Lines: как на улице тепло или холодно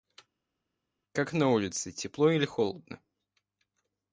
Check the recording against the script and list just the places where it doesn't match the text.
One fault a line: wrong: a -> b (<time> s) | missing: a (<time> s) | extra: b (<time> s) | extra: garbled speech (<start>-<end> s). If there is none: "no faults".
no faults